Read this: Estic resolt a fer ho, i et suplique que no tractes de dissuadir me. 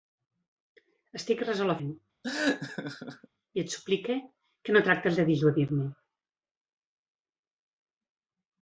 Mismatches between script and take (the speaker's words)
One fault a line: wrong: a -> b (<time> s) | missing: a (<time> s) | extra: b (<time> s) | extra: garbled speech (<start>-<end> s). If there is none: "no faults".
missing: fer (1.8 s)